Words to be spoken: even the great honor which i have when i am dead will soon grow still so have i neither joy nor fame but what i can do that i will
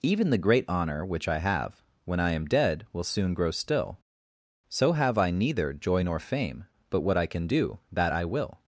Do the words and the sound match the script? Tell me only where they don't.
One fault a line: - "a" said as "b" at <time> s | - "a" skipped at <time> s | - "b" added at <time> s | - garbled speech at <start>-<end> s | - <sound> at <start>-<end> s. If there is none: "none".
none